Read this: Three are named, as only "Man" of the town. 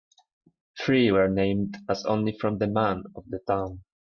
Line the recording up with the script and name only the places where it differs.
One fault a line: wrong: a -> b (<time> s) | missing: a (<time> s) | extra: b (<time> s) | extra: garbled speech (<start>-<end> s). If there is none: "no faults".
wrong: are -> were (1.1 s)
extra: from the (2.4 s)